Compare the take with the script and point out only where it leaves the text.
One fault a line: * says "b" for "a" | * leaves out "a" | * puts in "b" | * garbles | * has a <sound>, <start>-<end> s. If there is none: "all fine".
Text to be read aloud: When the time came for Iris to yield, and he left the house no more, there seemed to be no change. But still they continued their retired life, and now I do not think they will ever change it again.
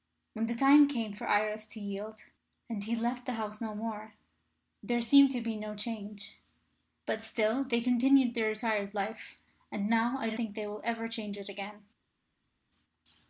* leaves out "not"